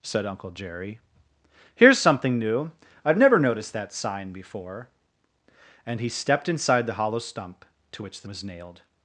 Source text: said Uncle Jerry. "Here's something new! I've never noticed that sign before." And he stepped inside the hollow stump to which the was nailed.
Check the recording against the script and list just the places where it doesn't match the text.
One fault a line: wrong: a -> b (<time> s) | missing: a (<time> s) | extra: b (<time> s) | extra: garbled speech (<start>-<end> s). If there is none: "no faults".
no faults